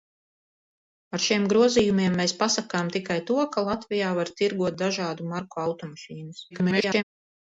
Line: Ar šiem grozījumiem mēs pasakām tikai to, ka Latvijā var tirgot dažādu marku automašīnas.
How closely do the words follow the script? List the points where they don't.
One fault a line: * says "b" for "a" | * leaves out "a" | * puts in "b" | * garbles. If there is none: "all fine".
* garbles